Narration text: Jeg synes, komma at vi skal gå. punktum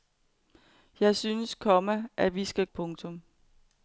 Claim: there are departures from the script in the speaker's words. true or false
true